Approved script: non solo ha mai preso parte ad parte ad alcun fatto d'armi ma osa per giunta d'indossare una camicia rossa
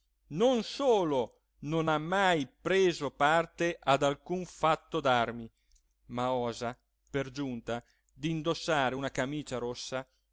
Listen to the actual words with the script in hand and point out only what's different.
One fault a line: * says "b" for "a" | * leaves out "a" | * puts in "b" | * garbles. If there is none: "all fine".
* puts in "non"
* leaves out "parte ad"